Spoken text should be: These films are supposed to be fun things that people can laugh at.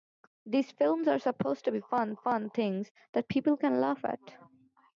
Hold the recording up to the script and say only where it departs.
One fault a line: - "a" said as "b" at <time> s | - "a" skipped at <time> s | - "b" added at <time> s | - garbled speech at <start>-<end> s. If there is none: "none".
- "fun" added at 2.1 s